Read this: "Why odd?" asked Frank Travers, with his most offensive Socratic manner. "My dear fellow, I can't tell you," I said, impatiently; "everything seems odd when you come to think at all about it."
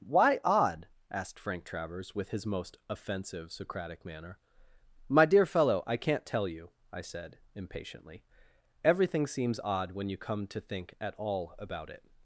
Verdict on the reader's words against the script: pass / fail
pass